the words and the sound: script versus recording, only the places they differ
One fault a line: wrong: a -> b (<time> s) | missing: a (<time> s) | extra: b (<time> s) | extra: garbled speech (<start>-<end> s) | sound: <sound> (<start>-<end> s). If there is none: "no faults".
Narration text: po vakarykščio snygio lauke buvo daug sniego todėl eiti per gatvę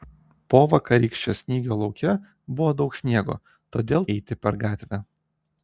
no faults